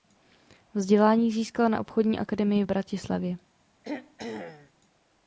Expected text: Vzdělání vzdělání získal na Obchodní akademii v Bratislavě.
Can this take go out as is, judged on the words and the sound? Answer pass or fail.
fail